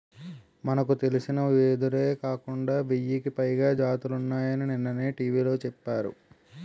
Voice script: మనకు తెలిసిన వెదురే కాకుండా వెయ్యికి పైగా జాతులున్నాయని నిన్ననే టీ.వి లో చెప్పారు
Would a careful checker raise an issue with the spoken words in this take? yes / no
no